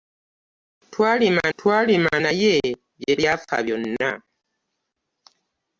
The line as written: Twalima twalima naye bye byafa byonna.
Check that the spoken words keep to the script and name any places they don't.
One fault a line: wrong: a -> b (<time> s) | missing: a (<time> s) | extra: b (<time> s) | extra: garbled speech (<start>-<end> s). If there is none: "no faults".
no faults